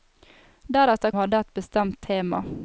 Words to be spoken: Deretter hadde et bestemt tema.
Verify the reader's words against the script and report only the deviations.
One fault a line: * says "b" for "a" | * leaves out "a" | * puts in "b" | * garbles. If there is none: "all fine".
all fine